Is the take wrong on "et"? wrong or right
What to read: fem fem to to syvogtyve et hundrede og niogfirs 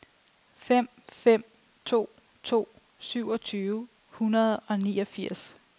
wrong